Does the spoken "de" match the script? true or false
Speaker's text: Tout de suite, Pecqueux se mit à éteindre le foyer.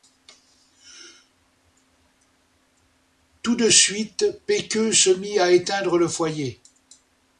true